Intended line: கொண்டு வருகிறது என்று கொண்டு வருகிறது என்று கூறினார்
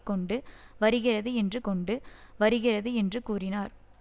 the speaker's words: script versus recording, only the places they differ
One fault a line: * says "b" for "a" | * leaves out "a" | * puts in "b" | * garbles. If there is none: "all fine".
all fine